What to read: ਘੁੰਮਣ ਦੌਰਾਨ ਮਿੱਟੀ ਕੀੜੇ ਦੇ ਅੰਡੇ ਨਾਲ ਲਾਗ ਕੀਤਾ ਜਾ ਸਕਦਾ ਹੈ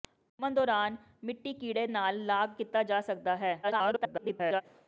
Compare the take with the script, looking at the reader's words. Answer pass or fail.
fail